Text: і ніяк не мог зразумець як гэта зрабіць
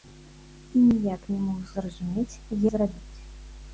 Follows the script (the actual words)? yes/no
no